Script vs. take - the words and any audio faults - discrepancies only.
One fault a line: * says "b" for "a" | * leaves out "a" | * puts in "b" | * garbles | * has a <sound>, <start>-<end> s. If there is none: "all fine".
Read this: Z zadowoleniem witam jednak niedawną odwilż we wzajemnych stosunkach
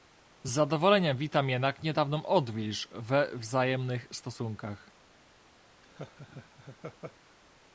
* has a laugh, 5.8-7.4 s